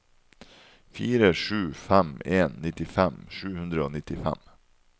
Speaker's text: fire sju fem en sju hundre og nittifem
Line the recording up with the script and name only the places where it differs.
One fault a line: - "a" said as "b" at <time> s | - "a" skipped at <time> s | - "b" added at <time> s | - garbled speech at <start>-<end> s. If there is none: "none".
- "nittifem" added at 2.6 s